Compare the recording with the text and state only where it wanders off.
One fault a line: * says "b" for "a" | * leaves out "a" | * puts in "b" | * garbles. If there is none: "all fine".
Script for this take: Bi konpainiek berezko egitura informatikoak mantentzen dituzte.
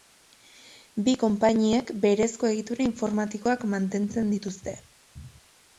all fine